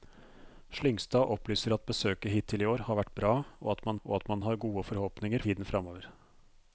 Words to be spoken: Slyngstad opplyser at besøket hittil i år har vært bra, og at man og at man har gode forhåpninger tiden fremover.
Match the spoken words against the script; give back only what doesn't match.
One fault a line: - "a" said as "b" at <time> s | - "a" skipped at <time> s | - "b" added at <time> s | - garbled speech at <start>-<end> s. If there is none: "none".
none